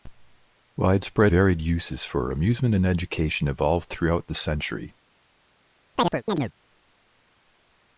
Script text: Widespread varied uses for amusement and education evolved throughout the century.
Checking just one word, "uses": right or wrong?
right